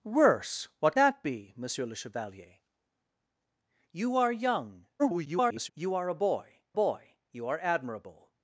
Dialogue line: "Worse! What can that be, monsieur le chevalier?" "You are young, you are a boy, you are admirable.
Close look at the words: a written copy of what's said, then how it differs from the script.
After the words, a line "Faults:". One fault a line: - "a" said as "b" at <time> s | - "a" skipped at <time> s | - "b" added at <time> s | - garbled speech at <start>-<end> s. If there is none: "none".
"Worse! What that be, monsieur le chevalier?" "You are young, [garbled] you are a boy boy, you are admirable.
Faults:
- "can" skipped at 1.0 s
- garbled speech at 5.0-5.7 s
- "boy" added at 6.7 s